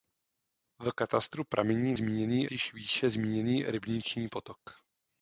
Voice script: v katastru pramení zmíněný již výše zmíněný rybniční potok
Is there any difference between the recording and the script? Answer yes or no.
no